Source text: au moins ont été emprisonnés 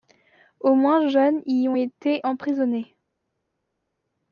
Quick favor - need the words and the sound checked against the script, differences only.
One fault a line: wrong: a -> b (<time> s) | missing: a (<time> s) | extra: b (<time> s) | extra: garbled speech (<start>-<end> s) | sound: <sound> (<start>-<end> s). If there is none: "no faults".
extra: jeunes y (1.1 s)